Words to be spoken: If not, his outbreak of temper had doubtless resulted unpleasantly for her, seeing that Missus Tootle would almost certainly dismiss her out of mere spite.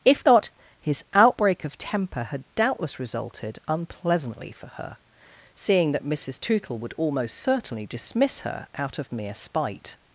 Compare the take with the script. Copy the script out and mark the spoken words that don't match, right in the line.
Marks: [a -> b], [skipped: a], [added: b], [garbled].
If not, his outbreak of temper had doubtless resulted unpleasantly for her, seeing that Missus Tootle would almost certainly dismiss her out of mere spite.